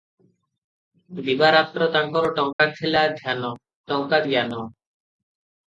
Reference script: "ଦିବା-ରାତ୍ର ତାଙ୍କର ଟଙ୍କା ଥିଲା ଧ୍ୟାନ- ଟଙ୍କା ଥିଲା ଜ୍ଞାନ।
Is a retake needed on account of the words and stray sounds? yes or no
yes